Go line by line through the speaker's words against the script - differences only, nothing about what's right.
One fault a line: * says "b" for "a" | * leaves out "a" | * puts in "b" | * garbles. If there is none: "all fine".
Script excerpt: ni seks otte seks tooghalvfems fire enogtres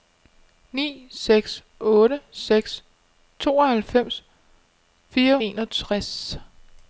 all fine